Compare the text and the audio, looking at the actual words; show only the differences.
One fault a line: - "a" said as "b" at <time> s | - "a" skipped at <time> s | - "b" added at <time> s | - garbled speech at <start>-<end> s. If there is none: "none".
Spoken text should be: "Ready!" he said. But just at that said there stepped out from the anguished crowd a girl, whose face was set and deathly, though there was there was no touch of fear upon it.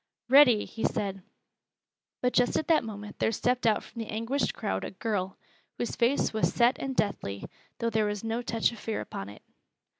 - "said" said as "moment" at 2.8 s
- "there was" skipped at 8.2 s